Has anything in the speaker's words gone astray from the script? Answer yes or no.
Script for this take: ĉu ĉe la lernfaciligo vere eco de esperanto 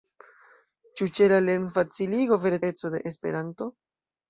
no